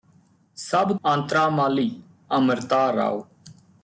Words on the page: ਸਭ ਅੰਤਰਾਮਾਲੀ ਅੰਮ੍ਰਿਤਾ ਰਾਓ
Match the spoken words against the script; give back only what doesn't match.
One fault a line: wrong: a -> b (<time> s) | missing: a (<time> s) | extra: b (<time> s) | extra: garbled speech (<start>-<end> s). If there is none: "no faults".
no faults